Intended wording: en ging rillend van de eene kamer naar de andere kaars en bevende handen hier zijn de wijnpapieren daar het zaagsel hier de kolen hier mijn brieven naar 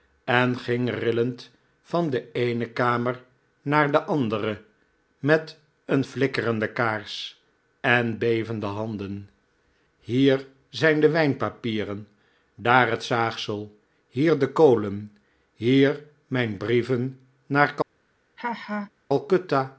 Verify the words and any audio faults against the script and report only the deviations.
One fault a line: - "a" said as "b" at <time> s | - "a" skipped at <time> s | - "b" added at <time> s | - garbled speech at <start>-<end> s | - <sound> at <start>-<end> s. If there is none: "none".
- "met een flikkerende" added at 5.2 s
- laugh at 18.4-18.9 s